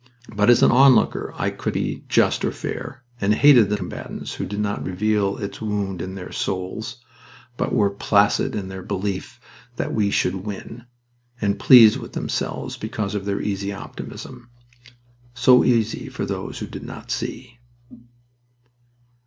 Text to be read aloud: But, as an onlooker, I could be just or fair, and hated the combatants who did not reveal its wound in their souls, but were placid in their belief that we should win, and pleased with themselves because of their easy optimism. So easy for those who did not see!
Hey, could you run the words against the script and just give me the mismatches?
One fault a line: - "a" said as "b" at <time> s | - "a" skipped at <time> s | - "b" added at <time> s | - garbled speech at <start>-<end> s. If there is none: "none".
none